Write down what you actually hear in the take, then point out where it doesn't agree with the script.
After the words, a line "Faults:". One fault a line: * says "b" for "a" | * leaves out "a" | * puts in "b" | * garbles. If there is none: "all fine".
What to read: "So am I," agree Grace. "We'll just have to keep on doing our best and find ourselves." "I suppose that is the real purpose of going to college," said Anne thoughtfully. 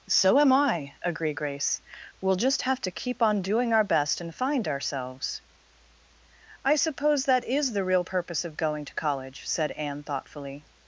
"So am I," agree Grace. "We'll just have to keep on doing our best and find ourselves." "I suppose that is the real purpose of going to college," said Anne thoughtfully.
Faults:
all fine